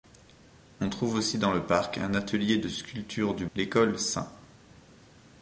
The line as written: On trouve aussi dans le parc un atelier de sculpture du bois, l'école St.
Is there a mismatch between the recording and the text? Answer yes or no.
yes